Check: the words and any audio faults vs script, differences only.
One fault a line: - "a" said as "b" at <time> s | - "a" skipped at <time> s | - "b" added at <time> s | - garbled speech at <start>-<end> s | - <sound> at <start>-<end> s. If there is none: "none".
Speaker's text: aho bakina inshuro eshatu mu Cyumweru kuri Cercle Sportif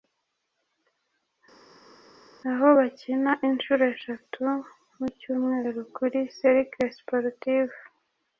none